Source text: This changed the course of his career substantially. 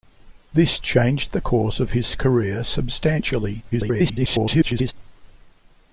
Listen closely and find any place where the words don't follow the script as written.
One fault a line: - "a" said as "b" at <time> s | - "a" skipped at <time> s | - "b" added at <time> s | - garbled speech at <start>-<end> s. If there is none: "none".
- garbled speech at 3.7-4.9 s